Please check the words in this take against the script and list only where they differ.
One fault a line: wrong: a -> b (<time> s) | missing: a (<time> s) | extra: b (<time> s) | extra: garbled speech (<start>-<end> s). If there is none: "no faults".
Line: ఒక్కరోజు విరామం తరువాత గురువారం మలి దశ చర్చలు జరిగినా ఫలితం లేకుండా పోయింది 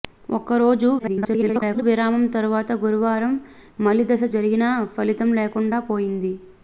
extra: garbled speech (1.0-1.8 s)
missing: చర్చలు (4.2 s)